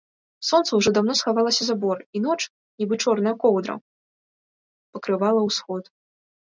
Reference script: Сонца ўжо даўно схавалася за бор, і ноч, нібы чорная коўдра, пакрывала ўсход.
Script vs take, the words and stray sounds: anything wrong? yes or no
no